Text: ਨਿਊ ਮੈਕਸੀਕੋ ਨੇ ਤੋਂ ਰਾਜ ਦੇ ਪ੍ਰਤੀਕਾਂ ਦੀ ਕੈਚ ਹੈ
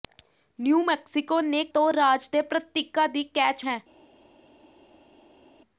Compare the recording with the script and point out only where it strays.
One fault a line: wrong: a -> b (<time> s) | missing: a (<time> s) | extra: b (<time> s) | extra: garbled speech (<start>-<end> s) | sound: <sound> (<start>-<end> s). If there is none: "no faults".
no faults